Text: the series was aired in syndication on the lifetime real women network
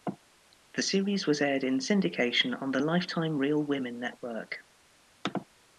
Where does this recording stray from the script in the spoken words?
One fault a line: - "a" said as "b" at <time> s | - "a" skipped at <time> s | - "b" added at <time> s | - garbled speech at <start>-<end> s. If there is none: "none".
none